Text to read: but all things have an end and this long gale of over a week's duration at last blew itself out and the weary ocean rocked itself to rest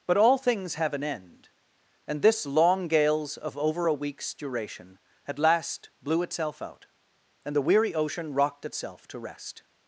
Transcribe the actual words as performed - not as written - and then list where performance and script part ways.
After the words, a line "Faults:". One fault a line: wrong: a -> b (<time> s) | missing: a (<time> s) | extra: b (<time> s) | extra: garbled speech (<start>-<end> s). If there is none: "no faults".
but all things have an end and this long gales of over a week's duration at last blew itself out and the weary ocean rocked itself to rest
Faults:
wrong: gale -> gales (2.9 s)